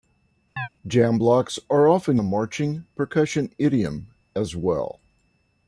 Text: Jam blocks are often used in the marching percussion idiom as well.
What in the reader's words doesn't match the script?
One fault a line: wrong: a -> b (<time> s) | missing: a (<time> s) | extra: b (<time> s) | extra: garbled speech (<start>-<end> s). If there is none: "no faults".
missing: used in (2.2 s)